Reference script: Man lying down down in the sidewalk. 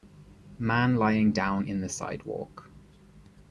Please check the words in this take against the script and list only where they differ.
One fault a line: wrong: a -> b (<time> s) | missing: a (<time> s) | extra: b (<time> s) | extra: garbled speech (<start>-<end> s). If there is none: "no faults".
missing: down (1.7 s)